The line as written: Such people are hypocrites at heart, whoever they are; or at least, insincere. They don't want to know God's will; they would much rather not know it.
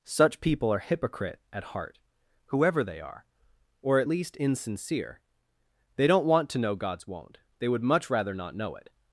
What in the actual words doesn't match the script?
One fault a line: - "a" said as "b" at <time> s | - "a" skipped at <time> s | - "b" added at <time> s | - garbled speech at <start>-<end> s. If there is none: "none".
- "hypocrites" said as "hypocrite" at 0.8 s
- "will" said as "won't" at 7.1 s